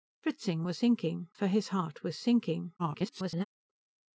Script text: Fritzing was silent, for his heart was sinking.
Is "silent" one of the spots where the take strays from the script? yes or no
yes